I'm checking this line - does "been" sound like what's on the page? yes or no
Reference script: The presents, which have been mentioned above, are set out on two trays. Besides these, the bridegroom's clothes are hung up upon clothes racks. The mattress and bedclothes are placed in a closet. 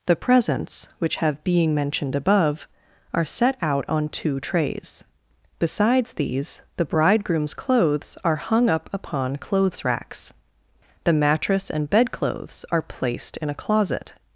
no